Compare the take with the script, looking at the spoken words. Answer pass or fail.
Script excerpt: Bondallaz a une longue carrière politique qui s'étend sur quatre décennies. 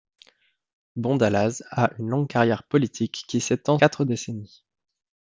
fail